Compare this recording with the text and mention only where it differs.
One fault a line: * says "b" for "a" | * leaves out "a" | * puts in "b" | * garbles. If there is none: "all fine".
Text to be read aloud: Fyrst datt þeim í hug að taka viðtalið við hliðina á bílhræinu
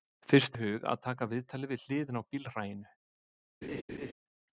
* leaves out "datt þeim"